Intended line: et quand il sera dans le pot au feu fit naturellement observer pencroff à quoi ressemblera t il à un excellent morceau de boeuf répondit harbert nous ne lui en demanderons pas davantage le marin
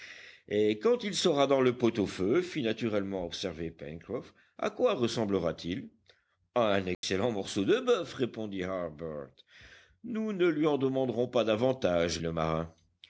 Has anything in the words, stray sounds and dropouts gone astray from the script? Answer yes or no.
yes